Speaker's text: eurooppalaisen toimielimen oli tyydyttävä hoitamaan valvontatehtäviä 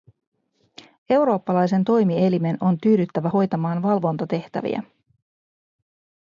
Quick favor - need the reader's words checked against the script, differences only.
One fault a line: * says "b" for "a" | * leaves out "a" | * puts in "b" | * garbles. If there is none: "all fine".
* says "on" for "oli"